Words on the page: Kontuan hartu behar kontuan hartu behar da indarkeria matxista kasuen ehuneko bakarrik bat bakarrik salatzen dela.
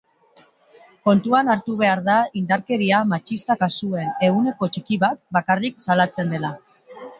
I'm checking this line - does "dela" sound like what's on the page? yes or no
yes